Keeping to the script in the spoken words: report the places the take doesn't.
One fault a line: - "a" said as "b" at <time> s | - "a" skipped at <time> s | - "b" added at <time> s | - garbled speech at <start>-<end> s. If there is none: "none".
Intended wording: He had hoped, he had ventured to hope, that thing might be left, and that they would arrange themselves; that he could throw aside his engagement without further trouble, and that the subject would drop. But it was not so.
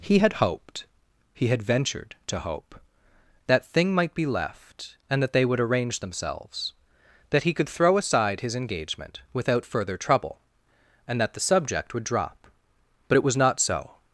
none